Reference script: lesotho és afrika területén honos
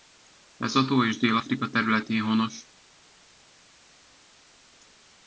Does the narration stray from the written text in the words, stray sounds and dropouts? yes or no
yes